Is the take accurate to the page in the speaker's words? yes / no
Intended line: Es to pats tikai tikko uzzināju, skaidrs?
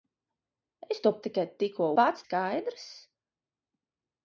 no